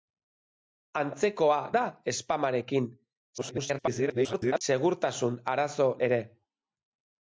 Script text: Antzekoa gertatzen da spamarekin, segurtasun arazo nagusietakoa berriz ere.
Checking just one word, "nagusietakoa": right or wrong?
wrong